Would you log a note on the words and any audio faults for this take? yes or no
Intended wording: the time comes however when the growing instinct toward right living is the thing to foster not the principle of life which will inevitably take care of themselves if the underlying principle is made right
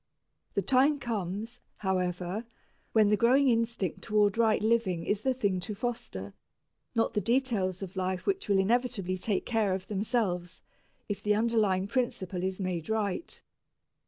yes